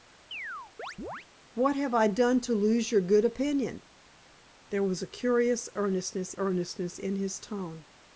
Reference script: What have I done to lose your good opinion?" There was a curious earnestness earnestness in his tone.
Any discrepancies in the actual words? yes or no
no